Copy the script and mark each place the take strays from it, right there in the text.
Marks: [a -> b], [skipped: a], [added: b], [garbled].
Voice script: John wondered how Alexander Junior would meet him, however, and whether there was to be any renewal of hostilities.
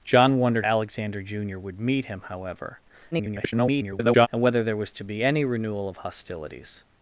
John wondered [skipped: how] Alexander Junior would meet him, however, [garbled] and whether there was to be any renewal of hostilities.